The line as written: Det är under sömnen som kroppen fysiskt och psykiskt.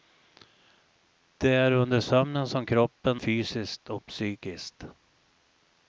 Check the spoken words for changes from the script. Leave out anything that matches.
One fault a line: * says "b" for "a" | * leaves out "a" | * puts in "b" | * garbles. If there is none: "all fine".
all fine